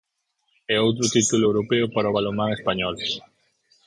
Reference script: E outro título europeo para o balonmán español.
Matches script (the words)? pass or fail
pass